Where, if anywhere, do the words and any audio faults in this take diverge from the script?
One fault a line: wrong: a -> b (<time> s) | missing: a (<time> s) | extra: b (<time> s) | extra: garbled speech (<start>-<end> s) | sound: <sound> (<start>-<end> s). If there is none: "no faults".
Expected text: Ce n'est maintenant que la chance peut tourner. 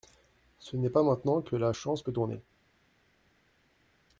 extra: pas (0.9 s)